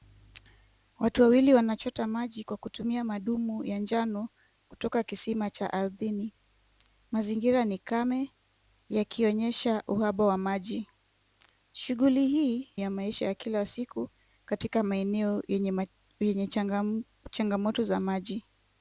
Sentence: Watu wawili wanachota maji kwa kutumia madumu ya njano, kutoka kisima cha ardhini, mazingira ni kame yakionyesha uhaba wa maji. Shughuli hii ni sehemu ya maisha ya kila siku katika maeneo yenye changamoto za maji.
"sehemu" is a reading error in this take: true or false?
true